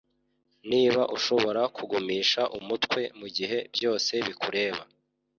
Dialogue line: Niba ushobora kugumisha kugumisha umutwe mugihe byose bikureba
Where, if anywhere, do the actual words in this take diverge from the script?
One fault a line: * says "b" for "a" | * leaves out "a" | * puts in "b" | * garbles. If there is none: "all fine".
* leaves out "kugumisha"